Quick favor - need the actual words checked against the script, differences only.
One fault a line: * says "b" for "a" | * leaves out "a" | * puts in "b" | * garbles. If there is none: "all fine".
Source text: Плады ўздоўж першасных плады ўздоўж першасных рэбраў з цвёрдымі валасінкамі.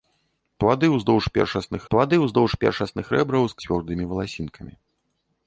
all fine